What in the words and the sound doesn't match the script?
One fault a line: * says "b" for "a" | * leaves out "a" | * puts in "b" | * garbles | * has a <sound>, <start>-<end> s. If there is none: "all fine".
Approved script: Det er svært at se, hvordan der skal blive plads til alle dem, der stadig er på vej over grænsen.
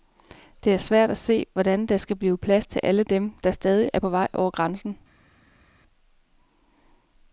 all fine